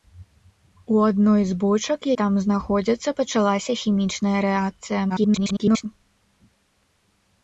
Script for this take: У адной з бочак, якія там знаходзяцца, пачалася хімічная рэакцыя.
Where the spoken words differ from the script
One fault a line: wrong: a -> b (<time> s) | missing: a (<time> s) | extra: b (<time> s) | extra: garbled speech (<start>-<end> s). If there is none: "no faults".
missing: якія (2.1 s)
extra: garbled speech (5.1-5.9 s)